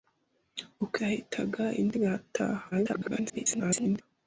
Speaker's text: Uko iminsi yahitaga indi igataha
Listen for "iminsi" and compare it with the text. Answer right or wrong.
wrong